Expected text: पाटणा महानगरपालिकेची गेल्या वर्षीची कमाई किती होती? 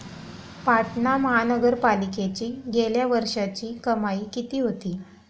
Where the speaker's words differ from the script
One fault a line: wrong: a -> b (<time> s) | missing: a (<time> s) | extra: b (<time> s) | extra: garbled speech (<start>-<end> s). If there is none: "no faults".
no faults